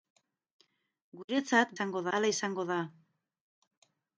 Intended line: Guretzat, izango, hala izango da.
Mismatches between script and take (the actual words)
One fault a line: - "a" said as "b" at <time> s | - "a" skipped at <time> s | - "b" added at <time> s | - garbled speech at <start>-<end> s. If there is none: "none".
none